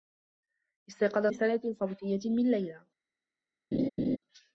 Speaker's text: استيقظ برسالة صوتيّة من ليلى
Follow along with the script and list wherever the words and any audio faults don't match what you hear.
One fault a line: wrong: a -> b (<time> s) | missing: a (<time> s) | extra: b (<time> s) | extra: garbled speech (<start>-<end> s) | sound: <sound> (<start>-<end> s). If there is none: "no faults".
sound: laugh (3.7-4.2 s)